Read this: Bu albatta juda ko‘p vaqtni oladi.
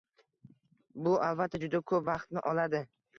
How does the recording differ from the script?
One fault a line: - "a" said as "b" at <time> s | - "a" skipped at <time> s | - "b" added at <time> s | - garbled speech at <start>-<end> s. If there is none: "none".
none